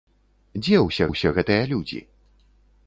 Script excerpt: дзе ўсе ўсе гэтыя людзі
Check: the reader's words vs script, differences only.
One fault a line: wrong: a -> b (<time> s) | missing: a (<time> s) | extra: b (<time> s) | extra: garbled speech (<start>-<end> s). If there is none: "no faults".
no faults